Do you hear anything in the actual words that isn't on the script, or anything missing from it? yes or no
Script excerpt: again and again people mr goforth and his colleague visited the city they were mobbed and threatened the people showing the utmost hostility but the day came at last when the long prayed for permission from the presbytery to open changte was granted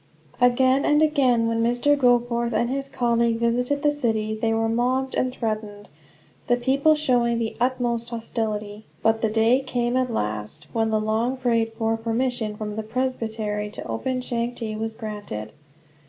yes